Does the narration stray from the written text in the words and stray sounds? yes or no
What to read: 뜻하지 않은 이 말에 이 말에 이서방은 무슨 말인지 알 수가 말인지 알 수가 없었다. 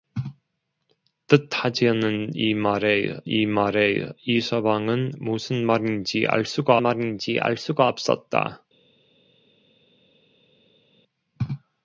no